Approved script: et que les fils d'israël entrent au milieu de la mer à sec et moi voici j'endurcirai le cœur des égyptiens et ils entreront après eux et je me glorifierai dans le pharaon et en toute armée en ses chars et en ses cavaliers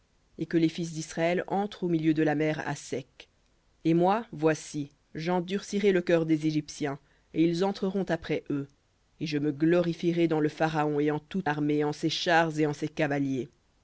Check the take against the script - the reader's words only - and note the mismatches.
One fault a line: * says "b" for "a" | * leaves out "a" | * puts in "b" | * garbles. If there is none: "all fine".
all fine